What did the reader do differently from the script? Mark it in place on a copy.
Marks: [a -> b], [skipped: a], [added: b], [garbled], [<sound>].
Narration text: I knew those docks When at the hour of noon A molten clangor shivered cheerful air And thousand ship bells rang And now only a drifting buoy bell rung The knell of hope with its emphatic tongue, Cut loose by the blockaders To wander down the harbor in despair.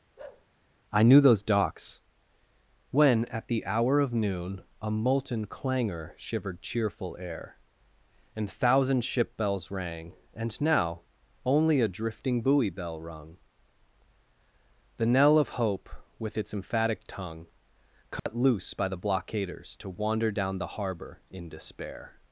[bark] I knew those docks When at the hour of noon A molten clangor shivered cheerful air And thousand ship bells rang And now only a drifting buoy bell rung The knell of hope with its emphatic tongue, Cut [dropout] loose by the blockaders To wander down the harbor in despair.